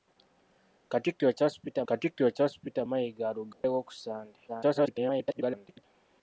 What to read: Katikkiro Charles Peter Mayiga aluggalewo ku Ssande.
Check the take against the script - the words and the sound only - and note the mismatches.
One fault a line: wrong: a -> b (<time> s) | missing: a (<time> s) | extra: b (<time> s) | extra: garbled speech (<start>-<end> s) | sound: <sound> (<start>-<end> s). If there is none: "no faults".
extra: katikkiro Charles Peter (1.9 s)
sound: dropout (3.5-3.6 s)
extra: garbled speech (4.5-5.8 s)